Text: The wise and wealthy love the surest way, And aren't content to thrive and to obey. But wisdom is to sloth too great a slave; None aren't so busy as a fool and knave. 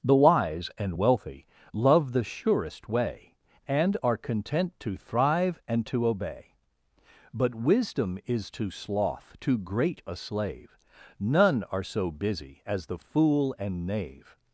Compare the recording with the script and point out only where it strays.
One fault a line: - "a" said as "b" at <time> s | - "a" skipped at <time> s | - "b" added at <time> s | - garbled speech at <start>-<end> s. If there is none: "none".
- "aren't" said as "are" at 4.0 s
- "aren't" said as "are" at 11.6 s
- "a" said as "the" at 12.8 s